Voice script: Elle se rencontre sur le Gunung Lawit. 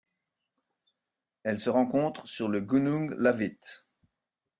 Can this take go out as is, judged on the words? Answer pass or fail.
pass